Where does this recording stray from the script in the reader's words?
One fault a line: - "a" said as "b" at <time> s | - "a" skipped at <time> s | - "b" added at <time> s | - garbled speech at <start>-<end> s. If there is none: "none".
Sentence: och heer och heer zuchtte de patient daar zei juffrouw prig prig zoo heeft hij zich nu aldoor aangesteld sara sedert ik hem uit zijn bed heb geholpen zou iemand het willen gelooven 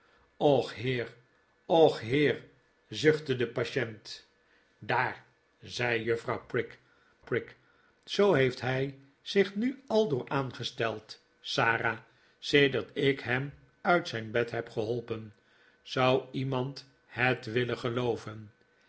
none